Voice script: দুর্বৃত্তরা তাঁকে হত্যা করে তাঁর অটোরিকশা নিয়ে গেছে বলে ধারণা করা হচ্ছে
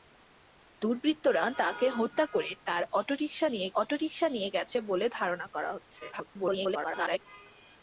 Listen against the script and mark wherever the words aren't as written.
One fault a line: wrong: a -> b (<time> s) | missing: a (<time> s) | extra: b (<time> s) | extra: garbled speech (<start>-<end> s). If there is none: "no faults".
extra: অটোরিকশা নিয়ে (3.7 s)
extra: garbled speech (6.1-7.2 s)